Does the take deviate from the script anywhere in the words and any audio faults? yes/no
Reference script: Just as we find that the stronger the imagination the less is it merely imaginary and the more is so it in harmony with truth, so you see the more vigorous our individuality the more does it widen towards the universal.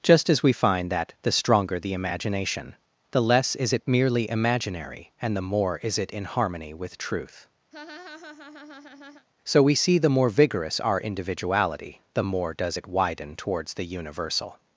yes